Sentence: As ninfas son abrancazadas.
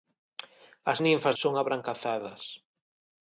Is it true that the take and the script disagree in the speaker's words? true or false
false